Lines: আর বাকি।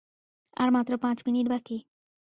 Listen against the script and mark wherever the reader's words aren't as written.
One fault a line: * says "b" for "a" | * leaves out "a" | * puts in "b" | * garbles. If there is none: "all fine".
* puts in "মাত্র পাঁচ মিনিট"